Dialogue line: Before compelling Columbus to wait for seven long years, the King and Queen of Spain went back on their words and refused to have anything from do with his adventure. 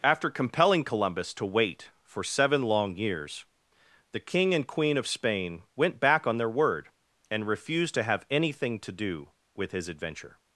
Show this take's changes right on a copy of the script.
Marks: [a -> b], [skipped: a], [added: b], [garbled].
[Before -> After] compelling Columbus to wait for seven long years, the King and Queen of Spain went back on their [words -> word] and refused to have anything [from -> to] do with his adventure.